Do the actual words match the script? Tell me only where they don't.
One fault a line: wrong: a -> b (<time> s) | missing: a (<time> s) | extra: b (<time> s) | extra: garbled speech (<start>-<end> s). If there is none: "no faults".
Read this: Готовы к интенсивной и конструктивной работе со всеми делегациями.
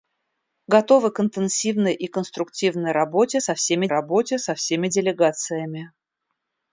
extra: работе со всеми (3.9 s)